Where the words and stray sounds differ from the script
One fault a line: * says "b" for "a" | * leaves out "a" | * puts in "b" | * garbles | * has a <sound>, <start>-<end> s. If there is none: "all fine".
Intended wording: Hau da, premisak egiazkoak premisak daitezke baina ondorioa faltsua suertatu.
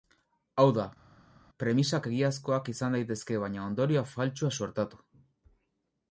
* says "izan" for "premisak"